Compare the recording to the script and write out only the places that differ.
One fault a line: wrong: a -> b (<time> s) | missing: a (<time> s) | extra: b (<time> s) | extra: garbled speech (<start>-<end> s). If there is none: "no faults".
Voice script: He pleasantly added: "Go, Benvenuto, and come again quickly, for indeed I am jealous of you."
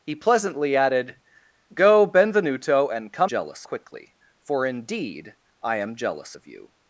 wrong: again -> jealous (3.3 s)